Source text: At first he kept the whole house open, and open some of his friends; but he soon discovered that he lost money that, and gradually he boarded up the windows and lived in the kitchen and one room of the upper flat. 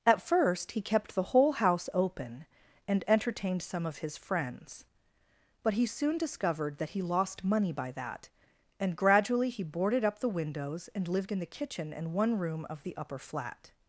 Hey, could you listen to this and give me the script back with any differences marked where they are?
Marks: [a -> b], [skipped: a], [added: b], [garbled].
At first he kept the whole house open, and [open -> entertained] some of his friends; but he soon discovered that he lost money [added: by] that, and gradually he boarded up the windows and lived in the kitchen and one room of the upper flat.